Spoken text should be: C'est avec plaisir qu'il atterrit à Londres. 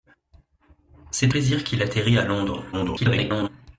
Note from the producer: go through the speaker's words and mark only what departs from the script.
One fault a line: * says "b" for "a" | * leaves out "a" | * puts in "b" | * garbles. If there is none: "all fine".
* leaves out "avec"
* garbles